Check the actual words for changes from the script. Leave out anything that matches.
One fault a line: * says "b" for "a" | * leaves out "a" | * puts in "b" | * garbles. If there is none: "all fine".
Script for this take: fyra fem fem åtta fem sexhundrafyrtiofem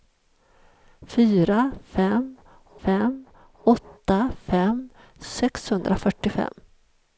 all fine